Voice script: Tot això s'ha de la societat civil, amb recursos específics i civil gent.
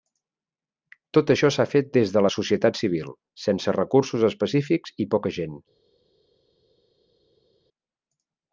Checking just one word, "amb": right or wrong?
wrong